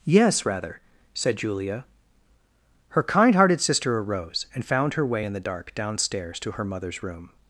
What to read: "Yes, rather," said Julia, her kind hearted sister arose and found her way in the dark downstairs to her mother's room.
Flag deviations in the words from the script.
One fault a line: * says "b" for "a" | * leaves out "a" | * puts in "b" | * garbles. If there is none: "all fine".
all fine